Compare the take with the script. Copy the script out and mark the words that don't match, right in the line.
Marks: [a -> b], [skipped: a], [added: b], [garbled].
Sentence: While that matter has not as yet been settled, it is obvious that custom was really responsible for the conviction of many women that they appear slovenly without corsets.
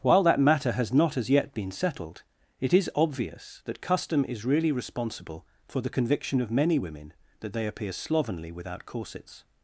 While that matter has not as yet been settled, it is obvious that custom [was -> is] really responsible for the conviction of many women that they appear slovenly without corsets.